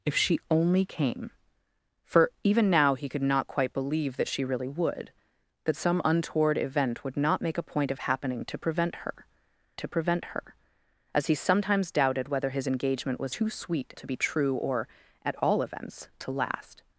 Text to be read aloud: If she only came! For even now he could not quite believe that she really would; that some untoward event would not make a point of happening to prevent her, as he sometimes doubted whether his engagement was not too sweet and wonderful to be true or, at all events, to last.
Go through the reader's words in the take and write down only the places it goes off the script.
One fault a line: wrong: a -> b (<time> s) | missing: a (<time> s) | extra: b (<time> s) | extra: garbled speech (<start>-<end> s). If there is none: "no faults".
extra: to prevent her (9.8 s)
missing: not (13.3 s)
missing: and wonderful (13.9 s)